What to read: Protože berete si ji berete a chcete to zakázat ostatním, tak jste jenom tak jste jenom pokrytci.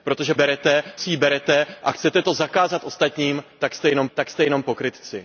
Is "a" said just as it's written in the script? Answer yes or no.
yes